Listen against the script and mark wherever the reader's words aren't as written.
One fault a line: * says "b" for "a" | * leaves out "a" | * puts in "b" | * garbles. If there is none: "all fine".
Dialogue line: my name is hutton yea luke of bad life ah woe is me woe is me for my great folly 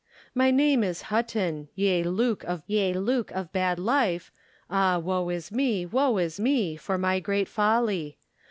* puts in "yea luke of"